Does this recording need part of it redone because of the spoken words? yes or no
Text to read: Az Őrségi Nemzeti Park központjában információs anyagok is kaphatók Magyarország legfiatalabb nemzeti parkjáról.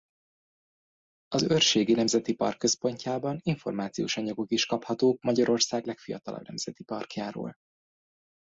no